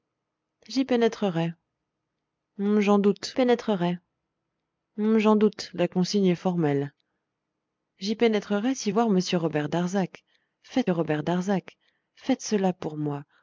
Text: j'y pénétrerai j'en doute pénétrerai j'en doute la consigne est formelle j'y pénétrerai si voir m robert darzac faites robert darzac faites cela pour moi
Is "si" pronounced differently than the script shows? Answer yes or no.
no